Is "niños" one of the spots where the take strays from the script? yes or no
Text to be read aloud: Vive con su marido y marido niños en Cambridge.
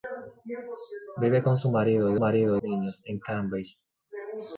no